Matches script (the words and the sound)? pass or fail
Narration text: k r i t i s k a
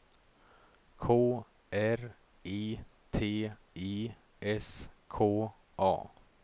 pass